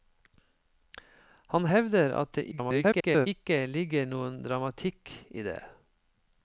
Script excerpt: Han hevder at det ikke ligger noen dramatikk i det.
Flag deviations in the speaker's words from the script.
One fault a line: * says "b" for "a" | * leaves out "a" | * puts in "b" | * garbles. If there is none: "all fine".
* garbles